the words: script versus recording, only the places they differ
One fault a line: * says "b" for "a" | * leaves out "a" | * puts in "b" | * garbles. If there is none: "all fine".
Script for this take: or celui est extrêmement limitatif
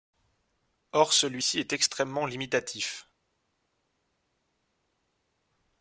* puts in "ci"